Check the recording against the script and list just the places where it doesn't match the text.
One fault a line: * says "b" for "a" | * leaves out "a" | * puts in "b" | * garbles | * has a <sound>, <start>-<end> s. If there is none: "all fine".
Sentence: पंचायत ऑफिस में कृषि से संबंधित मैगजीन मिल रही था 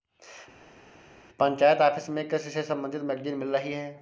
* says "है" for "था"